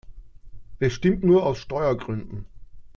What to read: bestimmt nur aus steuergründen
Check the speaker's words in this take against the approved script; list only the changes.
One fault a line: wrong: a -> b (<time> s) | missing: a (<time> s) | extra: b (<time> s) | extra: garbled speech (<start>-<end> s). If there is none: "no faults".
no faults